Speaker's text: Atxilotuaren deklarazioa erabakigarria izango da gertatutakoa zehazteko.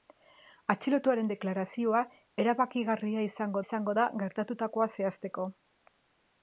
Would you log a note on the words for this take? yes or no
yes